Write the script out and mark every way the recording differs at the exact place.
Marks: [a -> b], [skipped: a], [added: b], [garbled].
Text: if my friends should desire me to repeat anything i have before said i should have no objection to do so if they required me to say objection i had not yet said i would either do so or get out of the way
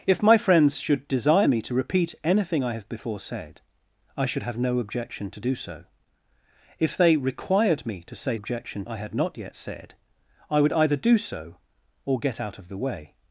if my friends should desire me to repeat anything i have before said i should have no objection to do so if they required me to say objection i had not yet said i would either do so or get out of the way